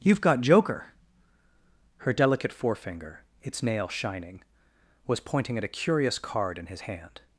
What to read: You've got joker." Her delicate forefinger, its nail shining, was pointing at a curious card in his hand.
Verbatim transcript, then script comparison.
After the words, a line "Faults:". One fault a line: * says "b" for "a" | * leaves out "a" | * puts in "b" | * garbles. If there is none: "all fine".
You've got joker." Her delicate forefinger, its nail shining, was pointing at a curious card in his hand.
Faults:
all fine